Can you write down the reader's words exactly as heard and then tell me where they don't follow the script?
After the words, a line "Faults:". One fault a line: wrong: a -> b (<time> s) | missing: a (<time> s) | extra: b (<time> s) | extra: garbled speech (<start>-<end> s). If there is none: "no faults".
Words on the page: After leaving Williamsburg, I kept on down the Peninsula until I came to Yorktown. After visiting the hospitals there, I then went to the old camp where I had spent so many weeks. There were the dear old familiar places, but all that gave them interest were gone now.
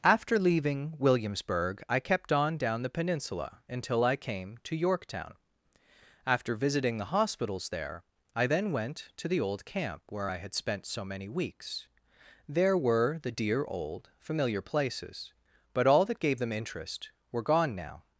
After leaving Williamsburg, I kept on down the Peninsula until I came to Yorktown. After visiting the hospitals there, I then went to the old camp where I had spent so many weeks. There were the dear old familiar places, but all that gave them interest were gone now.
Faults:
no faults